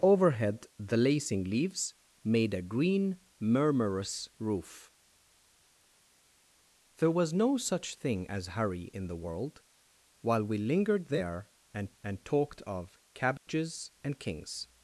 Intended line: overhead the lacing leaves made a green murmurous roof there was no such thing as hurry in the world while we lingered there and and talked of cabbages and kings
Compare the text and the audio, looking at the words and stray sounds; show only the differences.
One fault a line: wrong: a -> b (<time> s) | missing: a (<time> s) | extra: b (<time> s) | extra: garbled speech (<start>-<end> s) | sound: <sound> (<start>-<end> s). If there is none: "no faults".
sound: dropout (13.4-13.5 s)